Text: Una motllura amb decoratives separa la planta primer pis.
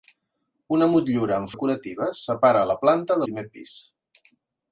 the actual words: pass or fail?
pass